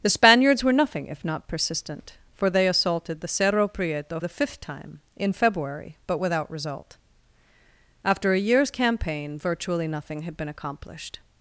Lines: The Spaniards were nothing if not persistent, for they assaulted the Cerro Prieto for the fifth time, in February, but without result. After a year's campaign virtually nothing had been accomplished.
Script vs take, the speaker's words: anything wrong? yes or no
yes